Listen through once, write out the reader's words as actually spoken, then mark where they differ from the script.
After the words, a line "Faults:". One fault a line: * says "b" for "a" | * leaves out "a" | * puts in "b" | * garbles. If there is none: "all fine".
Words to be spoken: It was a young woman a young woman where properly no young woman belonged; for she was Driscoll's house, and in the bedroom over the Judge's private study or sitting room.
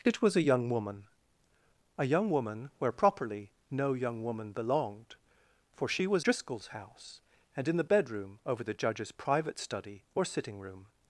It was a young woman a young woman where properly no young woman belonged; for she was Driscoll's house, and in the bedroom over the Judge's private study or sitting room.
Faults:
all fine